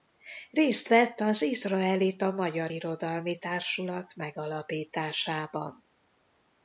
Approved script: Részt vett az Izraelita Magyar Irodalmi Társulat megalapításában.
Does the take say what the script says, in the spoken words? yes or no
yes